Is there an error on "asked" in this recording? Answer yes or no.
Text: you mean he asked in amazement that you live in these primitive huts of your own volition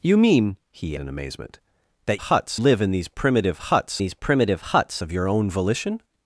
yes